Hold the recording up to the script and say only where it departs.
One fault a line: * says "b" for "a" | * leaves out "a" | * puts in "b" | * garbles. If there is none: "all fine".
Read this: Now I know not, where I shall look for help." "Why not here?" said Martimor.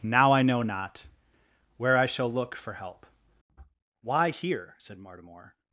* leaves out "not"